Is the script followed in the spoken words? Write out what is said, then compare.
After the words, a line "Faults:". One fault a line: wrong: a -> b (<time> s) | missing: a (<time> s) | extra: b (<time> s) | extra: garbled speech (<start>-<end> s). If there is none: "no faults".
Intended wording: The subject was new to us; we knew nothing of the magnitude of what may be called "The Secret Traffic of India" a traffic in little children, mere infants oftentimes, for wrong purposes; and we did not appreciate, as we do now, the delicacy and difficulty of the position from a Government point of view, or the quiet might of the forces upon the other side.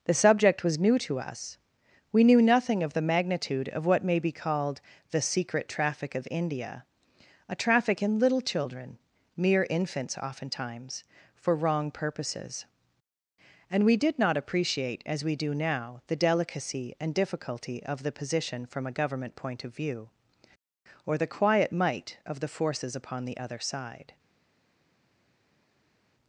The subject was new to us; we knew nothing of the magnitude of what may be called "The Secret Traffic of India" a traffic in little children, mere infants oftentimes, for wrong purposes; and we did not appreciate, as we do now, the delicacy and difficulty of the position from a Government point of view, or the quiet might of the forces upon the other side.
Faults:
no faults